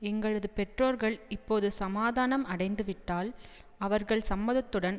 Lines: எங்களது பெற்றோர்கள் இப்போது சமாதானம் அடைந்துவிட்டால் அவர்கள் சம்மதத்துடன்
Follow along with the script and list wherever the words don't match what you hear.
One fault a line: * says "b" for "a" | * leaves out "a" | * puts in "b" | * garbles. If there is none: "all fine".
all fine